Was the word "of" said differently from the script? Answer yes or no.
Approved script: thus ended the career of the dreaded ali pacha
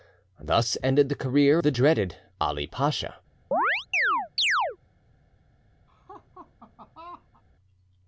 yes